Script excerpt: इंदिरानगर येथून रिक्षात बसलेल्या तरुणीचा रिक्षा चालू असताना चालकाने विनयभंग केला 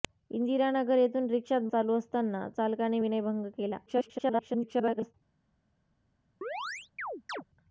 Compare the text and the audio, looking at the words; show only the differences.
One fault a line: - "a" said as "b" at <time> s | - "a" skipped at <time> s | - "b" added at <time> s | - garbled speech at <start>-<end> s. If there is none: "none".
- "बसलेल्या तरुणीचा रिक्षा" skipped at 1.7 s
- garbled speech at 3.9-5.1 s